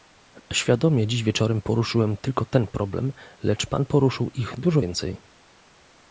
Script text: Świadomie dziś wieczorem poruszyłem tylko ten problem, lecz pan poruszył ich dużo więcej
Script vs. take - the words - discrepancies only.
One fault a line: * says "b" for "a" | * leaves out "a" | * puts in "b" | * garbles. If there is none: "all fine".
all fine